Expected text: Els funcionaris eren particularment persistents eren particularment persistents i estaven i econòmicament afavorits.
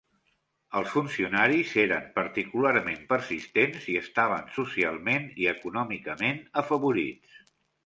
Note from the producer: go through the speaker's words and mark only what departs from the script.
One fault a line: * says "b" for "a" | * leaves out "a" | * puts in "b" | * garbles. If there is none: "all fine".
* leaves out "eren particularment persistents"
* puts in "socialment"